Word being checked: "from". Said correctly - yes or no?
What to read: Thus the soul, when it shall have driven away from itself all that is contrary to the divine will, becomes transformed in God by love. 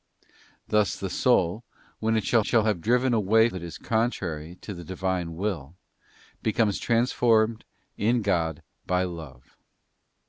no